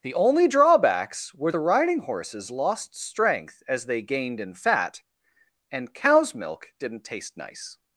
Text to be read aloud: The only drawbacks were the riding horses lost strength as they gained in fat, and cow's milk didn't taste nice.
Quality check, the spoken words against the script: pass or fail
pass